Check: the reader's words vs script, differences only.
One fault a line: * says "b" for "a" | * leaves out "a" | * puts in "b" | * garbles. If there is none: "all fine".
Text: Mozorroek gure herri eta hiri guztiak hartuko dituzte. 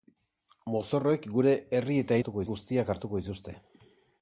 * says "hartuko" for "hiri"